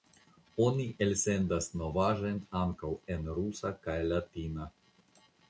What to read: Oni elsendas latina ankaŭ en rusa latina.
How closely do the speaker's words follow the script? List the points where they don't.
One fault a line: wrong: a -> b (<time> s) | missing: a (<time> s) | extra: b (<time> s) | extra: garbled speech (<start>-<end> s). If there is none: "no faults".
wrong: latina -> novaĵojn (1.8 s)
extra: kaj (3.9 s)